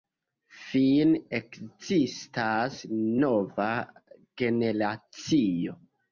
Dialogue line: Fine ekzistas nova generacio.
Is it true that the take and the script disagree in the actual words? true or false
false